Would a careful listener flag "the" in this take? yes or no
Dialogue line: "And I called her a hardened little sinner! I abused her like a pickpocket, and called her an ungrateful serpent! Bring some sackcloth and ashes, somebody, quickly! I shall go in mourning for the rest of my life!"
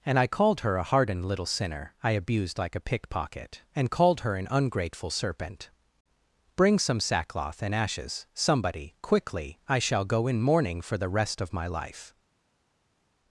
no